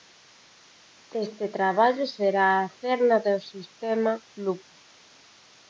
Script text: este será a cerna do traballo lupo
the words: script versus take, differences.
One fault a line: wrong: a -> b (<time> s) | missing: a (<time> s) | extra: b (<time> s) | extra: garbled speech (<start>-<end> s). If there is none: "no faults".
extra: traballo (1.6 s)
wrong: traballo -> sistema (3.5 s)